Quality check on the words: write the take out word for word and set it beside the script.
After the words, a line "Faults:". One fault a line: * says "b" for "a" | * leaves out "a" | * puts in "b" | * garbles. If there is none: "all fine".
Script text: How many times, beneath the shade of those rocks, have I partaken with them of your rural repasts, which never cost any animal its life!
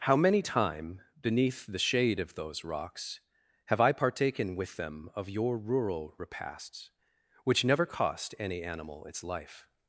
How many time, beneath the shade of those rocks, have I partaken with them of your rural repasts, which never cost any animal its life!
Faults:
* says "time" for "times"